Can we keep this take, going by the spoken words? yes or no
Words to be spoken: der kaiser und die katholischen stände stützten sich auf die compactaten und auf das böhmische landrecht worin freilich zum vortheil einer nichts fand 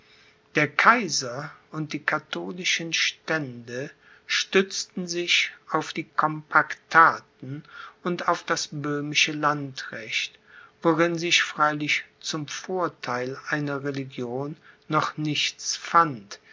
no